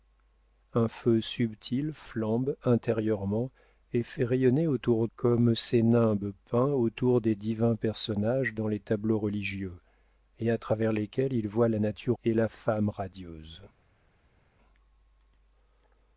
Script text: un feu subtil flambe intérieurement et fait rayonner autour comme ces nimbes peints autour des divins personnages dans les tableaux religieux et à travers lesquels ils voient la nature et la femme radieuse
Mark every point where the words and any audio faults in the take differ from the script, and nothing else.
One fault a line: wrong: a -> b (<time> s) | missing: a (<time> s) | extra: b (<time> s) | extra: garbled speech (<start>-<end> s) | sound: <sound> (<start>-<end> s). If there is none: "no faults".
no faults